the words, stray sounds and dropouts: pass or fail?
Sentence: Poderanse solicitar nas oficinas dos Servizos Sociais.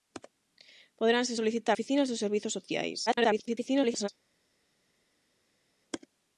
fail